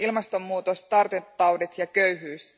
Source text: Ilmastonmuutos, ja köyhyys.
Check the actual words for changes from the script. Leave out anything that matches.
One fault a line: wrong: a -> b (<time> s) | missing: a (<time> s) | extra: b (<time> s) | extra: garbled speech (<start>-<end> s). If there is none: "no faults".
extra: tartuntataudit (0.8 s)